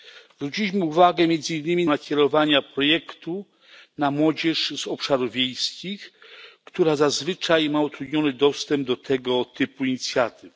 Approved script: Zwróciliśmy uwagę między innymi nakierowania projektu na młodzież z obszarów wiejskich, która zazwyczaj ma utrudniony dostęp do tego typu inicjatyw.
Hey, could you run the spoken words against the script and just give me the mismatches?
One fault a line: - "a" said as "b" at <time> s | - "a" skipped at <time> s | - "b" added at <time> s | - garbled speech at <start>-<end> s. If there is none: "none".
none